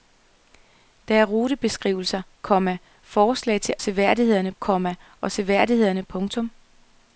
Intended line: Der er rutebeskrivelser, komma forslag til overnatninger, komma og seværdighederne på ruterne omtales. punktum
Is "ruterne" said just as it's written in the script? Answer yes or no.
no